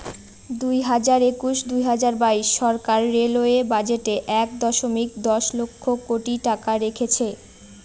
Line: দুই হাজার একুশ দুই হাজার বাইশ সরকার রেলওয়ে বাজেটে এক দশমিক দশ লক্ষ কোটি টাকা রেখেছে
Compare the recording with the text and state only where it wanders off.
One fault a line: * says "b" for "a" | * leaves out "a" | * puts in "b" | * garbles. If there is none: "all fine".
all fine